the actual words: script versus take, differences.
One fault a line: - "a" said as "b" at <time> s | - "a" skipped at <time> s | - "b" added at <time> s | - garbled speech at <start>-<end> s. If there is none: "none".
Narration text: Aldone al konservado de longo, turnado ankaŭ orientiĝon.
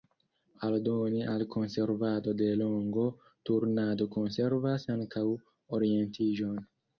- "konservas" added at 4.2 s